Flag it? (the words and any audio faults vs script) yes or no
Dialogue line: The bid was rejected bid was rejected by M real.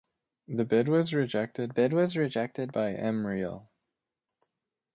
no